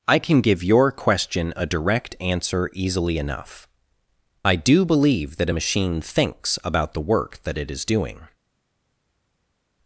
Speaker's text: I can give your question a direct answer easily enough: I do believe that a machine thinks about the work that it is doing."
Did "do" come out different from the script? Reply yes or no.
no